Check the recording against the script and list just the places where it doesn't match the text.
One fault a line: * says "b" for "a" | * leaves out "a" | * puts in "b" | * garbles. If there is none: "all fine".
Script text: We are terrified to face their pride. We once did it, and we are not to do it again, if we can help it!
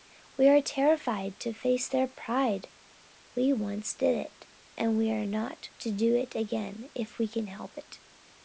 all fine